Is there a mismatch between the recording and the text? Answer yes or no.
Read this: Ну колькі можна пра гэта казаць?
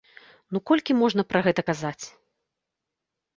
no